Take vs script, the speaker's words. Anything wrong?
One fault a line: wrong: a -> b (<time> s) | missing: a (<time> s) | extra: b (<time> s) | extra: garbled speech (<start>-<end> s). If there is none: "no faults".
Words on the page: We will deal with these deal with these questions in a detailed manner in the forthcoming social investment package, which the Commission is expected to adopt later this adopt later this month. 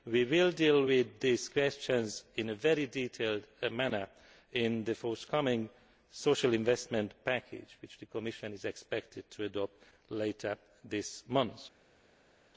missing: deal with these (1.5 s)
extra: very (2.5 s)
missing: adopt later this (11.2 s)